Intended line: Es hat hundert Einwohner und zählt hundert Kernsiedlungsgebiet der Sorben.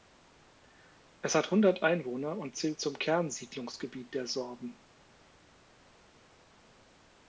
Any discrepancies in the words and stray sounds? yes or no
yes